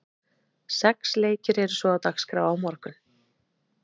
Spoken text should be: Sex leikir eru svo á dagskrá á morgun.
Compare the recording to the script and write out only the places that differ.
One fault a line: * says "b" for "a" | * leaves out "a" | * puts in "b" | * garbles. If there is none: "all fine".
all fine